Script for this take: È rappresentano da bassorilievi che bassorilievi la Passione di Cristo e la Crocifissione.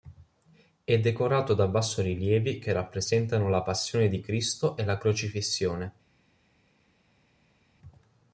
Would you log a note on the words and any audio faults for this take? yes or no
yes